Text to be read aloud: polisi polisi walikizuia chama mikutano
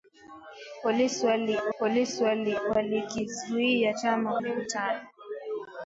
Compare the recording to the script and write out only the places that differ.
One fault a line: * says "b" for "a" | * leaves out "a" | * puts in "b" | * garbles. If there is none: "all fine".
all fine